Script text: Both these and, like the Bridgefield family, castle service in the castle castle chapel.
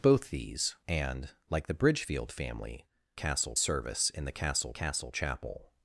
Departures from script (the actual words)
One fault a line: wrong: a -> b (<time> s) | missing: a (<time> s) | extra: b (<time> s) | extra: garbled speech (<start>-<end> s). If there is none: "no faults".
no faults